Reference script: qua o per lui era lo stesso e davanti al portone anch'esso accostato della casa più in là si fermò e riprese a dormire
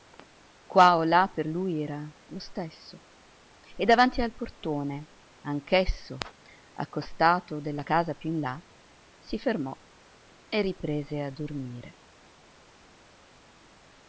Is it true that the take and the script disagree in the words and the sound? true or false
true